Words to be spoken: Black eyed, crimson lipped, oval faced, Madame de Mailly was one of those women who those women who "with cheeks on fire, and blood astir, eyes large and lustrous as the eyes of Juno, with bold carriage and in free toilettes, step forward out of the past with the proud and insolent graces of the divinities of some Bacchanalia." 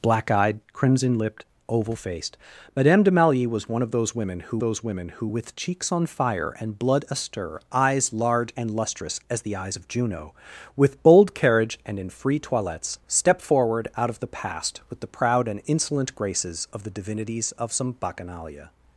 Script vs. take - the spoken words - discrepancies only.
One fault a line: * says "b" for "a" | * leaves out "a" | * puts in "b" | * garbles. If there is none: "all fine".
all fine